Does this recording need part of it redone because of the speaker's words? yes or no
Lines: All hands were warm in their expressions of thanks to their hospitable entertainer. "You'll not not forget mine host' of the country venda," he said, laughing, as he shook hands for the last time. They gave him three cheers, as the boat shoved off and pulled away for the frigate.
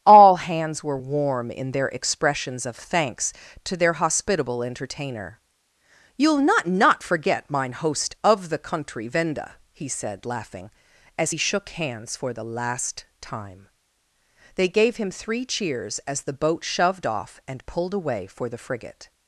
no